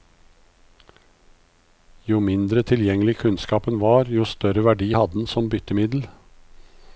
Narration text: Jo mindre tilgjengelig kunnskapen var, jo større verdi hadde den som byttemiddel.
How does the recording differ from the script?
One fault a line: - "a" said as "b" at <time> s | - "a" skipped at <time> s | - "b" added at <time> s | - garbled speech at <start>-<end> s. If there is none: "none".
none